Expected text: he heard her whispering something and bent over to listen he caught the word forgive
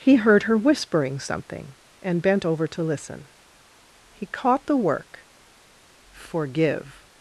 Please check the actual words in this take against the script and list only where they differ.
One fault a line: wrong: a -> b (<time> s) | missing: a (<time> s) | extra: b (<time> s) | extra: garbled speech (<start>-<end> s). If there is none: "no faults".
wrong: word -> work (4.8 s)